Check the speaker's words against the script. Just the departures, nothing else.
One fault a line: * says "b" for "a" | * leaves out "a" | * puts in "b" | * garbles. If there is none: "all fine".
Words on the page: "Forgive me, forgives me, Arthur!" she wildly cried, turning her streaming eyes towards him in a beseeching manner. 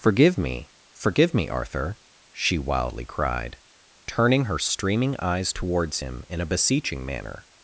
* says "forgive" for "forgives"